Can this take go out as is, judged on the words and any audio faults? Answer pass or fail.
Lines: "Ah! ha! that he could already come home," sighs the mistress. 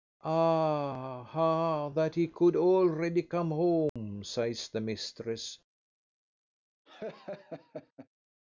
fail